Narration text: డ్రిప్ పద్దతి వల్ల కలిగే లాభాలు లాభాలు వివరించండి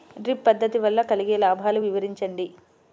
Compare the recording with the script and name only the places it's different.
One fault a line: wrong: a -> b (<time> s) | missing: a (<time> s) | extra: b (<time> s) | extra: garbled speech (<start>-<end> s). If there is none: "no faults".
missing: లాభాలు (1.8 s)